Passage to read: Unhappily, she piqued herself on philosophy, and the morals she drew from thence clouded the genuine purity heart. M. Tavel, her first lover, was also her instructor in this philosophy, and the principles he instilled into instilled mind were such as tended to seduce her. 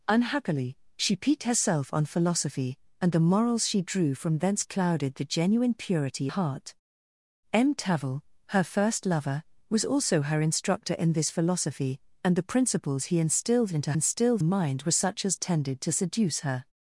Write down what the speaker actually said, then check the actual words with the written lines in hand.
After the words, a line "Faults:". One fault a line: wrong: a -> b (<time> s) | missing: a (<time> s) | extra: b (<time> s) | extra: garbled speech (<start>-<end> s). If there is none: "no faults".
Unhappily, she piqued herself on philosophy, and the morals she drew from thence clouded the genuine purity heart. M. Tavel, her first lover, was also her instructor in this philosophy, and the principles he instilled into instilled mind were such as tended to seduce her.
Faults:
no faults